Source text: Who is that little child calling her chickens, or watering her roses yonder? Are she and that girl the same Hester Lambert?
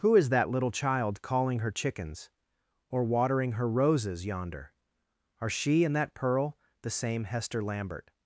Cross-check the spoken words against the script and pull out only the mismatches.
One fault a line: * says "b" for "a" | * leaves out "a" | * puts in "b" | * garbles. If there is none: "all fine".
* says "pearl" for "girl"